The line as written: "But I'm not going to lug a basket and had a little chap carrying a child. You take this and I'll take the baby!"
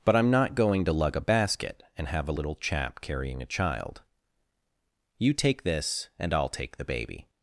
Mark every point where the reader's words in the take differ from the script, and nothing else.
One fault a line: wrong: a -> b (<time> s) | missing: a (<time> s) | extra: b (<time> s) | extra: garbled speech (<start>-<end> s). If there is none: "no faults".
wrong: had -> have (2.1 s)